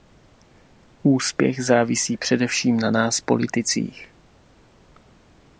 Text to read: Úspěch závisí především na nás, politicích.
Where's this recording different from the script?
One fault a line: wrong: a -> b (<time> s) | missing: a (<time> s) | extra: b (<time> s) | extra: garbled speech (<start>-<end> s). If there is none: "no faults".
no faults